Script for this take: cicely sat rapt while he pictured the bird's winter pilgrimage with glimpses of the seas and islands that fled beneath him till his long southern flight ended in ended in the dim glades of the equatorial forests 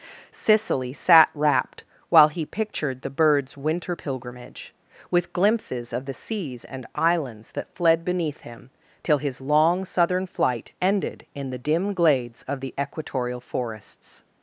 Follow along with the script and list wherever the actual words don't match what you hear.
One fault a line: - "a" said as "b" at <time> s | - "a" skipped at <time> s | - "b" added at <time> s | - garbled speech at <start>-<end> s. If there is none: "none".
- "ended in" skipped at 11.5 s